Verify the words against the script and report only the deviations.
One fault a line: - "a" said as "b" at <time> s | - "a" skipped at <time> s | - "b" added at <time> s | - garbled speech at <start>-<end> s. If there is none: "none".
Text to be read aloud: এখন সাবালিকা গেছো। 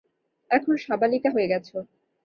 - "হয়ে" added at 1.3 s